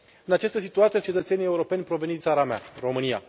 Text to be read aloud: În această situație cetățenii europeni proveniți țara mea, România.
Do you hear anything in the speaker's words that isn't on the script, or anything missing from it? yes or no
no